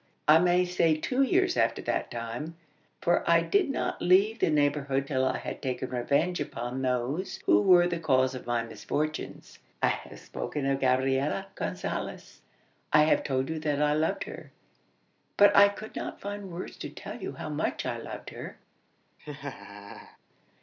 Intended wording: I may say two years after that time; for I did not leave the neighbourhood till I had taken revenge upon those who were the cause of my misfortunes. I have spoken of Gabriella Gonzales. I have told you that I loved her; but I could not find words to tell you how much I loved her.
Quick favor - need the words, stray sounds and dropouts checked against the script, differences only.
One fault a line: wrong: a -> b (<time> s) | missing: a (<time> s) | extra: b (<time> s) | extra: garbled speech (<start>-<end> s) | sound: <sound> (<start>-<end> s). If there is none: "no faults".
sound: laugh (19.2-20.2 s)